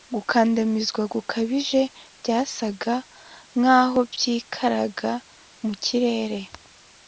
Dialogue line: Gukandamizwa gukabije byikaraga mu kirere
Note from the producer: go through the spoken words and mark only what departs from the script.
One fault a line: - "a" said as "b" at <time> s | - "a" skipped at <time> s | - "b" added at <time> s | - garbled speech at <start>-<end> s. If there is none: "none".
- "byasaga nkaho" added at 2.2 s